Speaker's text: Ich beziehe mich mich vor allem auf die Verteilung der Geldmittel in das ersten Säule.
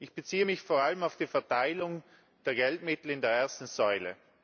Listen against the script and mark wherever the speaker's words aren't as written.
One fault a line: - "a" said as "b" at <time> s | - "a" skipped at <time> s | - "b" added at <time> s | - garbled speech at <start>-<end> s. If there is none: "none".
- "mich" skipped at 0.6 s
- "das" said as "der" at 3.2 s